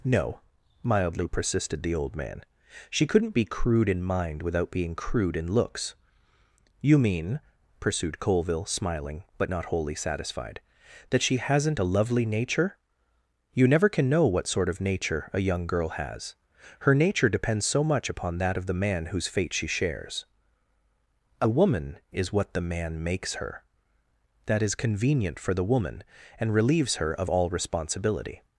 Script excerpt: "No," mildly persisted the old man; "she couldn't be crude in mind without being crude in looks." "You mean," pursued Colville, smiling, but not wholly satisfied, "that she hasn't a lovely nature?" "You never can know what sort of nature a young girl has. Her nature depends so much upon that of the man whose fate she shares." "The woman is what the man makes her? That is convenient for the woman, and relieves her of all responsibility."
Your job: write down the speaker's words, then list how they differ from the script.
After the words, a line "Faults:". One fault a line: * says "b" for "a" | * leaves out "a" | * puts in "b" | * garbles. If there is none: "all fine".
"No," mildly persisted the old man; "she couldn't be crude in mind without being crude in looks." "You mean," pursued Colville, smiling, but not wholly satisfied, "that she hasn't a lovely nature?" "You never can know what sort of nature a young girl has. Her nature depends so much upon that of the man whose fate she shares." "A woman is what the man makes her? That is convenient for the woman, and relieves her of all responsibility."
Faults:
* says "A" for "The"